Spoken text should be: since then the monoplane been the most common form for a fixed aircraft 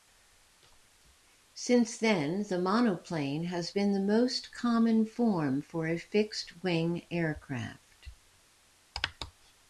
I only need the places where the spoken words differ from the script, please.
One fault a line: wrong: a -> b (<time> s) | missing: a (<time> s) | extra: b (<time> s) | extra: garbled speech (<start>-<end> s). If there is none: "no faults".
extra: has (3.4 s)
extra: wing (6.6 s)